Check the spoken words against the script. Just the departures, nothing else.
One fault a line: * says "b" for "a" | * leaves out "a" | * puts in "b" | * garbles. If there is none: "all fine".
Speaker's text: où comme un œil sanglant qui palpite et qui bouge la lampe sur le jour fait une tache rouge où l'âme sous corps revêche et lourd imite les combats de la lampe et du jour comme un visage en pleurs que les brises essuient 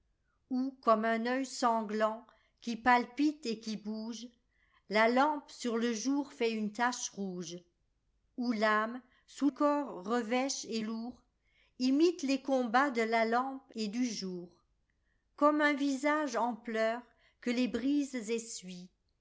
all fine